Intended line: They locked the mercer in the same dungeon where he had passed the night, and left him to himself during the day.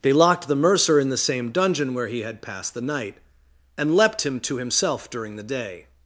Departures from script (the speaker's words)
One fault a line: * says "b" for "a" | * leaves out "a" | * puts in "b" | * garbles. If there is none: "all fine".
* says "leapt" for "left"